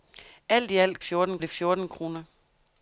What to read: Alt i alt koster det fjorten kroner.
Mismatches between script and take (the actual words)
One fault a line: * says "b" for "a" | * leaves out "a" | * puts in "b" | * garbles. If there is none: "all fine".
* says "fjorten" for "koster"